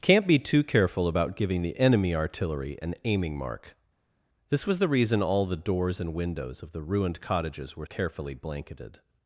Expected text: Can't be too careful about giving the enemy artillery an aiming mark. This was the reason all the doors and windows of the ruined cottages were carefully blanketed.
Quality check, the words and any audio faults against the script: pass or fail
pass